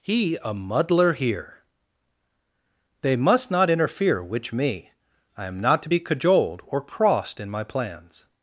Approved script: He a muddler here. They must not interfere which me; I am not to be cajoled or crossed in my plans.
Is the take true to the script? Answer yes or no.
yes